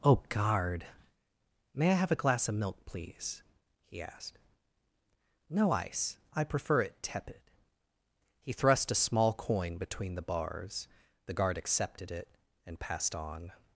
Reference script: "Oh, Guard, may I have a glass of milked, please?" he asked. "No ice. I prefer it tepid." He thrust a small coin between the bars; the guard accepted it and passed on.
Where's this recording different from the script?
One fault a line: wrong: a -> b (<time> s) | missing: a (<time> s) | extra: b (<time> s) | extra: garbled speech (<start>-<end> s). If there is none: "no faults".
wrong: milked -> milk (2.5 s)